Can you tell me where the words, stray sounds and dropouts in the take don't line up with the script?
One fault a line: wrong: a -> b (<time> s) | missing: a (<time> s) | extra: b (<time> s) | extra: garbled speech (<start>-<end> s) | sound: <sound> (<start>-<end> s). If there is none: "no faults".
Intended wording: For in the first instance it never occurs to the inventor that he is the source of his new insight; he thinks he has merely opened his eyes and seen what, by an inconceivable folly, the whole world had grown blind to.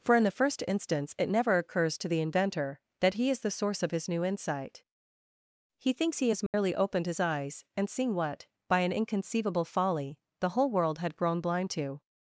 sound: dropout (6.5-6.5 s)